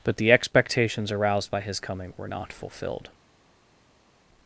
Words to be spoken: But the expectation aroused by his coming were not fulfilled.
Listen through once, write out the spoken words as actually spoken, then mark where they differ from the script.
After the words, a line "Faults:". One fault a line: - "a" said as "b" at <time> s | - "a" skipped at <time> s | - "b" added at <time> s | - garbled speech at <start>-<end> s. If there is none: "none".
But the expectations aroused by his coming were not fulfilled.
Faults:
- "expectation" said as "expectations" at 0.3 s